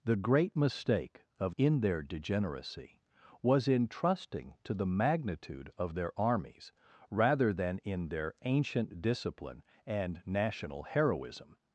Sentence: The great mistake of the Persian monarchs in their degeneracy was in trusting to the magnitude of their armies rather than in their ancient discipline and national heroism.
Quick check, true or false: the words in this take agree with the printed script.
false